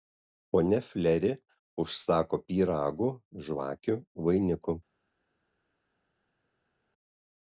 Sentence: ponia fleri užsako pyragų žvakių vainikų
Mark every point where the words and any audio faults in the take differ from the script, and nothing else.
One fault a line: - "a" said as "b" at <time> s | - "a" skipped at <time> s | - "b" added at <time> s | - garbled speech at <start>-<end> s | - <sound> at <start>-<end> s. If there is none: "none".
none